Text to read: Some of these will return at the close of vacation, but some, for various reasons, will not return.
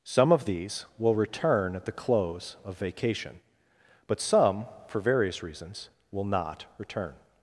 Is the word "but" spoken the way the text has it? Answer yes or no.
yes